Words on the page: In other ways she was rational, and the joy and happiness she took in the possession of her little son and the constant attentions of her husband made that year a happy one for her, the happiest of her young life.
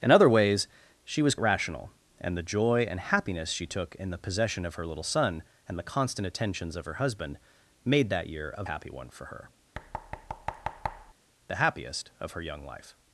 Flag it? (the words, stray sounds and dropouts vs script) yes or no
yes